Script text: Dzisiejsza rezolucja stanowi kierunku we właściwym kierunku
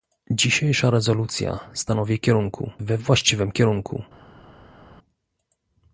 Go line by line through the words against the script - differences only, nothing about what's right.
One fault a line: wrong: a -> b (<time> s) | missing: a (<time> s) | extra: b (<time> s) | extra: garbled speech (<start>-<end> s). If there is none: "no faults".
no faults